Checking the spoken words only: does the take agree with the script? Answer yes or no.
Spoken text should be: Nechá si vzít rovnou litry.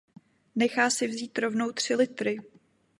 no